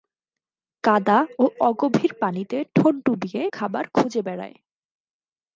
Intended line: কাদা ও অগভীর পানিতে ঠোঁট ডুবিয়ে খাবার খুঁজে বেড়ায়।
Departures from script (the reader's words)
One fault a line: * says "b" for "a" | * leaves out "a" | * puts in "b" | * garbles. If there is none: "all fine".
all fine